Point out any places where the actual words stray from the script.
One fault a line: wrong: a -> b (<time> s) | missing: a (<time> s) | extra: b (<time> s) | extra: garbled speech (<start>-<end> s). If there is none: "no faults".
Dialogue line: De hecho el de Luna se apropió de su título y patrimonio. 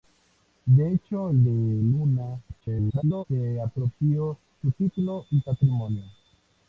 extra: garbled speech (2.6-3.3 s)
missing: de (4.4 s)